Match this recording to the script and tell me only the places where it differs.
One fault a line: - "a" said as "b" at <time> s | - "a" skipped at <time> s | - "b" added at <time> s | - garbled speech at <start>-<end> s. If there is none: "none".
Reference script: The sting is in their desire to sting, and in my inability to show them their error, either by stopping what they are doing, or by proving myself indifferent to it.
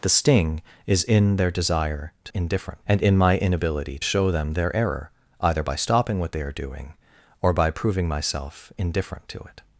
- "sting" said as "indifferent" at 2.3 s
- "to" skipped at 4.0 s